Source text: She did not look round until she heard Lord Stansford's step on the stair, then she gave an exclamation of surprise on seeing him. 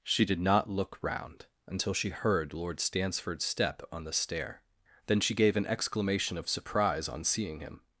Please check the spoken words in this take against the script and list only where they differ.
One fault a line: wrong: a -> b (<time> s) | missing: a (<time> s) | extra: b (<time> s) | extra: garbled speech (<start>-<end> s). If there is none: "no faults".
no faults